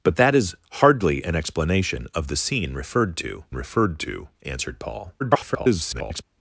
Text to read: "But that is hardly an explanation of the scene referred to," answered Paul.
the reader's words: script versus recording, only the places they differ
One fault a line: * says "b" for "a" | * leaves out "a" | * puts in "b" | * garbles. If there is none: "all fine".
* puts in "referred to"
* garbles